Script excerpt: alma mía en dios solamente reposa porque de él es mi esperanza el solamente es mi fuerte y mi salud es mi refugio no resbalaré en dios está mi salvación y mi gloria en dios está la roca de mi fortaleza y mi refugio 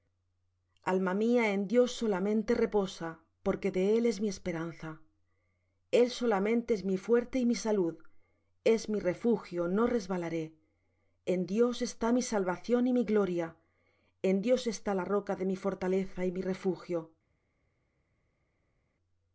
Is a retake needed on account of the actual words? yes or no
no